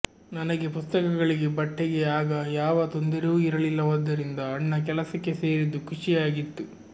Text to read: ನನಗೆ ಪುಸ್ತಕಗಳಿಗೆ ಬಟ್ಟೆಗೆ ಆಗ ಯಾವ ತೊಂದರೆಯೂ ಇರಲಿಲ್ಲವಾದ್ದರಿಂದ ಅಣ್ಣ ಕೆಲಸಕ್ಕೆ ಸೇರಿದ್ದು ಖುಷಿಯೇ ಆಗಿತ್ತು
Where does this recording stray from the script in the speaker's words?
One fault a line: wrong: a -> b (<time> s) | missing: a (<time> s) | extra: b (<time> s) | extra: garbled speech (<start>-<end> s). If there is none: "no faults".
no faults